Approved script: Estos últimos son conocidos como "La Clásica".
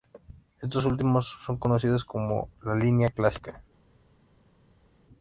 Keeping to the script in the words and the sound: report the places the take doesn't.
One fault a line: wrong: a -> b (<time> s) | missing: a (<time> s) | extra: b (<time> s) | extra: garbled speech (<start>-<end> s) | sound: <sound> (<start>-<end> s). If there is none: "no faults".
extra: Línea (2.7 s)